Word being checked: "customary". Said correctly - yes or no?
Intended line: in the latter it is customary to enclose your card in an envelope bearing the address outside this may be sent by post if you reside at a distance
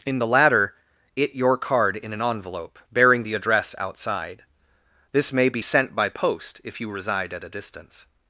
no